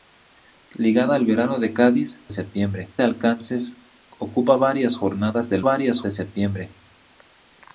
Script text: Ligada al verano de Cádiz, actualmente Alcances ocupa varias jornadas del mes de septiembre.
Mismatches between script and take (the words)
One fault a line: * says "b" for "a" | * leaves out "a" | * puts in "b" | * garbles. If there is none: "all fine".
* says "septiembre" for "actualmente"
* says "varias" for "mes"